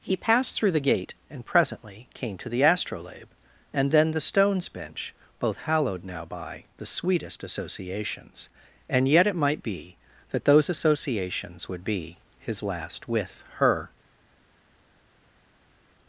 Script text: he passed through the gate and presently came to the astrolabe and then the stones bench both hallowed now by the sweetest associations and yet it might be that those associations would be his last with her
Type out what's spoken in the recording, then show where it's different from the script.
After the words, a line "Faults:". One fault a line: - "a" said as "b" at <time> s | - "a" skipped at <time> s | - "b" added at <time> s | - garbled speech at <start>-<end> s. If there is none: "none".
he passed through the gate and presently came to the astrolabe and then the stones bench both hallowed now by the sweetest associations and yet it might be that those associations would be his last with her
Faults:
none